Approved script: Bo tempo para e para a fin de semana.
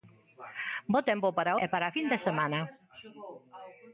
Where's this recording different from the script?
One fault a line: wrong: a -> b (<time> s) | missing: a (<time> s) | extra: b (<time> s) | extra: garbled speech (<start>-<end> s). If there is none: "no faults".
no faults